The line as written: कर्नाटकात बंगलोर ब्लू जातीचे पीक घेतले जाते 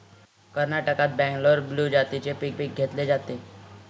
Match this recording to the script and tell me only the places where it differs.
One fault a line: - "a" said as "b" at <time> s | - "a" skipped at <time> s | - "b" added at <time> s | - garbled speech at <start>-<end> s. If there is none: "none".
- "पीक" added at 2.6 s